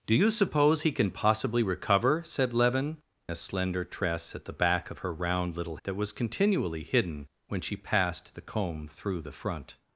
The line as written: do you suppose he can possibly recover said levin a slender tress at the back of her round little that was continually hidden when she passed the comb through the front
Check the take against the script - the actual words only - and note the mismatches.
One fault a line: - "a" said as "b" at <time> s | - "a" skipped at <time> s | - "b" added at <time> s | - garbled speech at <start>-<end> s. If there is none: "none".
none